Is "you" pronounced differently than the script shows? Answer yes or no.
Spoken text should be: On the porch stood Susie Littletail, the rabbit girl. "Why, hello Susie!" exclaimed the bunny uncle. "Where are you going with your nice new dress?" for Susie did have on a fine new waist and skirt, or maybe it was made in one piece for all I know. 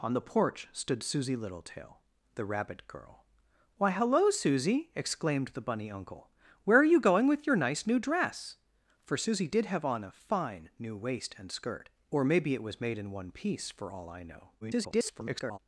no